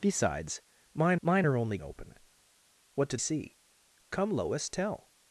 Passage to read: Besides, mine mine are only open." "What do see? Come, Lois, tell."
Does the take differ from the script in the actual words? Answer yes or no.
no